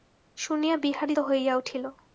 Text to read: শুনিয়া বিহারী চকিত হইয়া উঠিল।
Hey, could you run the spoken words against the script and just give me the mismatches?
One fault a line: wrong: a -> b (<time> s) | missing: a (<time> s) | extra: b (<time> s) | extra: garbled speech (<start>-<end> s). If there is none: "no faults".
missing: চকিত (1.1 s)